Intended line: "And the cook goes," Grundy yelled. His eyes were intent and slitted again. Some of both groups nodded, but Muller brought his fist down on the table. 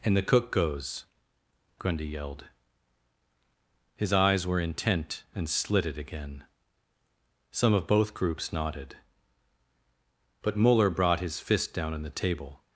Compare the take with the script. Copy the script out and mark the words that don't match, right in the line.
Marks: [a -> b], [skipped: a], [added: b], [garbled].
"And the cook goes," Grundy yelled. His eyes were intent and slitted again. Some of both groups nodded, but Muller brought his fist down on the table.